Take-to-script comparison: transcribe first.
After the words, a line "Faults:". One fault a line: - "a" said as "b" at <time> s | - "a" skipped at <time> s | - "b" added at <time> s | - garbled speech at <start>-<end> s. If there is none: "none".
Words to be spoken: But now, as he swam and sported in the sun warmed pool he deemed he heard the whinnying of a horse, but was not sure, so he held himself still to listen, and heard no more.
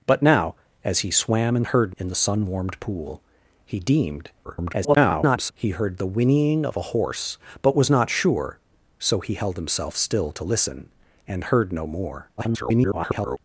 But now, as he swam and heard in the sun warmed pool he deemed [garbled] he heard the whinnying of a horse, but was not sure, so he held himself still to listen, and heard no more. [garbled]
Faults:
- "sported" said as "heard" at 1.7 s
- garbled speech at 4.4-5.5 s
- garbled speech at 12.4-13.4 s